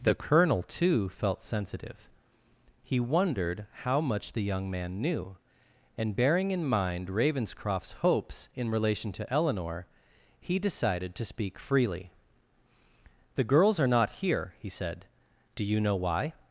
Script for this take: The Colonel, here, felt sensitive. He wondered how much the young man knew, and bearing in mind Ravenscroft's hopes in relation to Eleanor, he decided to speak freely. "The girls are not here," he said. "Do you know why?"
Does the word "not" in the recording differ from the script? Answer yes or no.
no